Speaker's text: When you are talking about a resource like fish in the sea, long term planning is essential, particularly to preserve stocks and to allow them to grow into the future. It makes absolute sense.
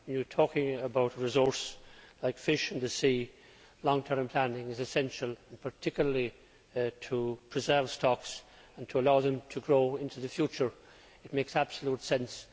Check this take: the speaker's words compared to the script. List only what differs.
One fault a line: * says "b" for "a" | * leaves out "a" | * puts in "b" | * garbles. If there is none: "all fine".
all fine